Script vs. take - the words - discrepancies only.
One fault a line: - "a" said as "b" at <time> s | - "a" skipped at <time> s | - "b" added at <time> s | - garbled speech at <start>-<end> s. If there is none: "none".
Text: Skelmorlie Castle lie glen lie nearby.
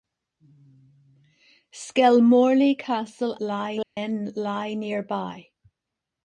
none